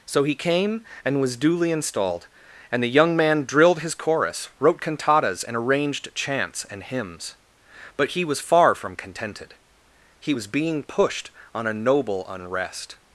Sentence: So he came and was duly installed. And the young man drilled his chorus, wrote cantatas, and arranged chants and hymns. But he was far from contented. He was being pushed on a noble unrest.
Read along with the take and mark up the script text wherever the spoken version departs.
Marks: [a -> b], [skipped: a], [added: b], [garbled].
So he came and was duly installed. And the young man drilled his chorus, wrote cantatas, and arranged chants and hymns. But he was far from contented. He was being pushed on a noble unrest.